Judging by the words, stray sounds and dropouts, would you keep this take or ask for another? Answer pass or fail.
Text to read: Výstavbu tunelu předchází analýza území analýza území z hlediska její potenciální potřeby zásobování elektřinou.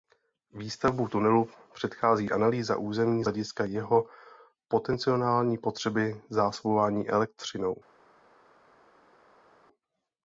fail